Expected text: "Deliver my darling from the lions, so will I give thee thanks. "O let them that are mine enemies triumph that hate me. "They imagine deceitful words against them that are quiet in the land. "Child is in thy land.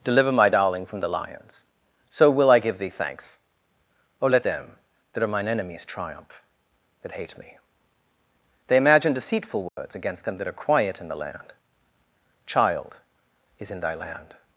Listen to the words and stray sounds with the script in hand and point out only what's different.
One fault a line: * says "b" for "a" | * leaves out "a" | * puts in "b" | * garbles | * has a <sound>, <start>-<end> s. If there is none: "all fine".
* has a dropout, 9.7-9.8 s